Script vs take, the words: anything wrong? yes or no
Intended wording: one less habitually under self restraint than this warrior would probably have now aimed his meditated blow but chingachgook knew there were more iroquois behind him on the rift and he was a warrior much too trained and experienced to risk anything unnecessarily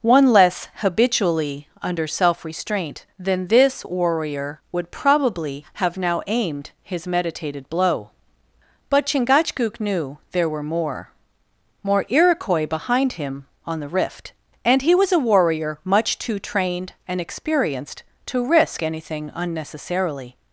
yes